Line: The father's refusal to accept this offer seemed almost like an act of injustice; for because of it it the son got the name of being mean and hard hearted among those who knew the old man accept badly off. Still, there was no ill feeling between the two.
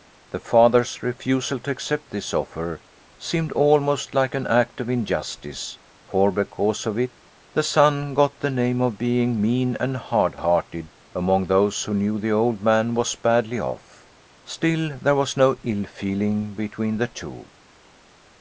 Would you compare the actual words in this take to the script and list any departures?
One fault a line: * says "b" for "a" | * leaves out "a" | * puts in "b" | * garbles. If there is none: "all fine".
* leaves out "it"
* says "was" for "accept"